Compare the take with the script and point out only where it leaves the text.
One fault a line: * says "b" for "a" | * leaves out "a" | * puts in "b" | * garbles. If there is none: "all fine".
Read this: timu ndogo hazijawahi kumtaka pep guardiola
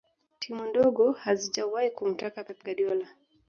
all fine